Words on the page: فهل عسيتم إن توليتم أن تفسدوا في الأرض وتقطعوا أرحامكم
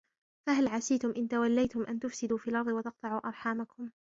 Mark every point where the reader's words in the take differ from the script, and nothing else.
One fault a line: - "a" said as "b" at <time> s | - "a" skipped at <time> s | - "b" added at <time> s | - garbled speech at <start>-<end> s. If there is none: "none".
none